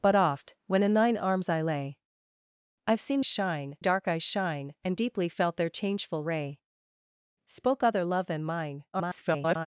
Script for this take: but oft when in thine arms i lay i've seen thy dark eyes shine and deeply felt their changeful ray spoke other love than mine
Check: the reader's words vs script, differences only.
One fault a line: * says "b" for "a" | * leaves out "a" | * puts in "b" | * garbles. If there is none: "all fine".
* says "shine" for "thy"
* garbles